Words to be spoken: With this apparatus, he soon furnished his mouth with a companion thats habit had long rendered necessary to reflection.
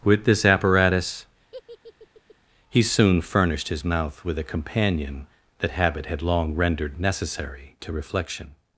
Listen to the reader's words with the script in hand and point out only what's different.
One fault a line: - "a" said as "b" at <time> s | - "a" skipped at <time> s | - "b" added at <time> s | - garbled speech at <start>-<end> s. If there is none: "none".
- "thats" said as "that" at 5.6 s